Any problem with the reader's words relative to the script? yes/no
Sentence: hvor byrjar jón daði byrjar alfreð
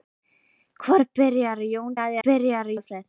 no